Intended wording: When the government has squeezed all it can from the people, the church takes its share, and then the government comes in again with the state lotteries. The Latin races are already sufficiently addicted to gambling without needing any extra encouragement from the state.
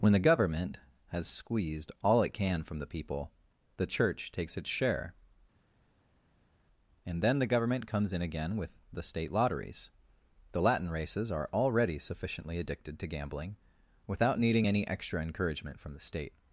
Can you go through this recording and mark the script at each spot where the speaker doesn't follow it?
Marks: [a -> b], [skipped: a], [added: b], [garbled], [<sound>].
When the government has squeezed all it can from the people, the church takes its share, and then the government comes in again with the state lotteries. The Latin races are already sufficiently addicted to gambling without needing any extra encouragement from the state.